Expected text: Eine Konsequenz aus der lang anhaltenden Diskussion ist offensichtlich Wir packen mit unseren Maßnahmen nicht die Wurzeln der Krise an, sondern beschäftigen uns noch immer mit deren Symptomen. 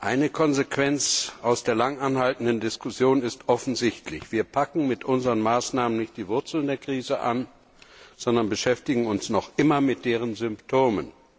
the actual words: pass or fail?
pass